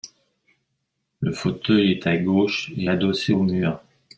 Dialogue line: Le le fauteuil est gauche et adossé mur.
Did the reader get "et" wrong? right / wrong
right